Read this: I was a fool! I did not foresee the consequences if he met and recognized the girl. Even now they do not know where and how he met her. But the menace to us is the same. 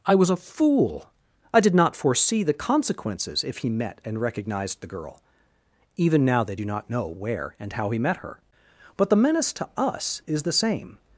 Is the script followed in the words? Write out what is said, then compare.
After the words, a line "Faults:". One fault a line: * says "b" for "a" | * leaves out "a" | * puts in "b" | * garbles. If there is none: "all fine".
I was a fool! I did not foresee the consequences if he met and recognized the girl. Even now they do not know where and how he met her. But the menace to us is the same.
Faults:
all fine